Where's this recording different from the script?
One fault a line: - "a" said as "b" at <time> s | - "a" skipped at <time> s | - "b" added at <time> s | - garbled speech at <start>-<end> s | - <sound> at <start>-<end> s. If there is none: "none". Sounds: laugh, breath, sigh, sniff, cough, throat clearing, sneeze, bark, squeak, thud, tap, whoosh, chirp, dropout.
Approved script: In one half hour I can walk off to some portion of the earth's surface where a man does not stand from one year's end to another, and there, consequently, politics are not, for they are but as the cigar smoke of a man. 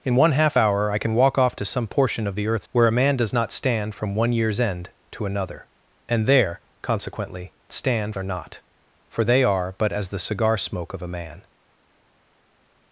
- "surface" skipped at 2.7 s
- "politics" said as "stand" at 7.7 s